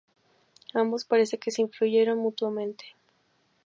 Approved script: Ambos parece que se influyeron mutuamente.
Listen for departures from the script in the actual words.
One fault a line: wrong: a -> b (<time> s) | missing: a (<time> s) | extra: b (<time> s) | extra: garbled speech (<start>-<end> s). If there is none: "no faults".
no faults